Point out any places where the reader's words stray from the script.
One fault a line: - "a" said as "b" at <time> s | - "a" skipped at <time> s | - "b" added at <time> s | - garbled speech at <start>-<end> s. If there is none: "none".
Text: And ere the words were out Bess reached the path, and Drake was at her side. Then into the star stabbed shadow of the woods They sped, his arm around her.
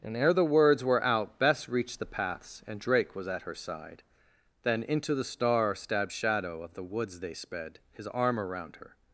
- "path" said as "paths" at 2.0 s